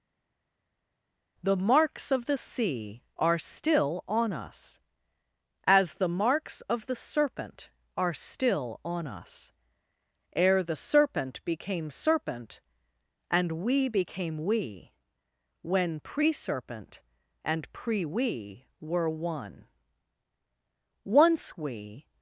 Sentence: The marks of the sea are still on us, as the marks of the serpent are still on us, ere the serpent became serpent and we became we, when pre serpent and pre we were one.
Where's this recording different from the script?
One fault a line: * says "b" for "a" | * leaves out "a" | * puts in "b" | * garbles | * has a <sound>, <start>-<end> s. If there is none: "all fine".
* puts in "Once we"